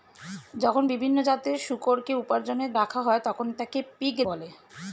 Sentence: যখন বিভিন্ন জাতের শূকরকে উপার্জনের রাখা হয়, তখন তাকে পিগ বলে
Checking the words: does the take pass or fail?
pass